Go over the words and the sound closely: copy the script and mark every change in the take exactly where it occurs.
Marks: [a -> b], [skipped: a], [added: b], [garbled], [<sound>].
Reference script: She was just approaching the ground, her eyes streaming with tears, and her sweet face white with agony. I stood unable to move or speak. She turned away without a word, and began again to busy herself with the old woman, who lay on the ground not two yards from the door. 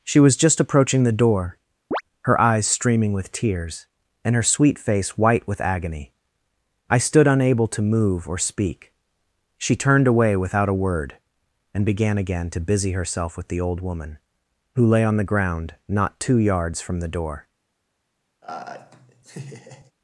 She was just approaching the [ground, -> door] [chirp] her eyes streaming with tears, and her sweet face white with agony. I stood unable to move or speak. She turned away without a word, and began again to busy herself with the old woman, who lay on the ground not two yards from the door. [laugh]